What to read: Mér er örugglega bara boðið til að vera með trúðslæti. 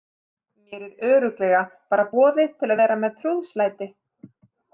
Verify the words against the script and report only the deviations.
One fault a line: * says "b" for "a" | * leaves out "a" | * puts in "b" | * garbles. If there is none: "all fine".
all fine